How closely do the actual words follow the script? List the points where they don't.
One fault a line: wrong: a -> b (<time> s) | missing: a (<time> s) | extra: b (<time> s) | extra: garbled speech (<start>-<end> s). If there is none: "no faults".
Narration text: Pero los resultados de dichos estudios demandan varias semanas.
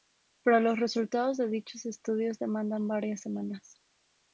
no faults